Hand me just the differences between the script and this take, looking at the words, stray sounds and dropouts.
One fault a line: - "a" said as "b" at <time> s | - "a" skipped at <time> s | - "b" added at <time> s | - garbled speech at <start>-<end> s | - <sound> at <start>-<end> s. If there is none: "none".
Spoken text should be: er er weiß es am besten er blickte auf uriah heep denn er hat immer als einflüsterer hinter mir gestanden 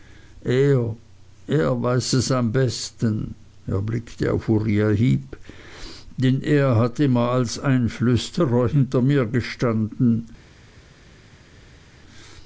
none